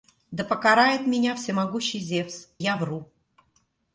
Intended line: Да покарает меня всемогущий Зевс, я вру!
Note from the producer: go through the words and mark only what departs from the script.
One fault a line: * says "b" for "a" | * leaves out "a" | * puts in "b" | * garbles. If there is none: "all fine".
all fine